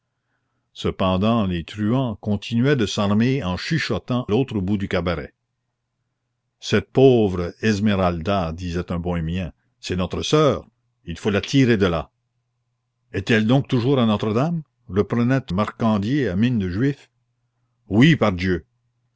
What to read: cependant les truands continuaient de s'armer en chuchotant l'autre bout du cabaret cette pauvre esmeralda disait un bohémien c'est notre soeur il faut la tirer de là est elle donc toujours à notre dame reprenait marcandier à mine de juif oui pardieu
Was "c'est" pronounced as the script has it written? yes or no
yes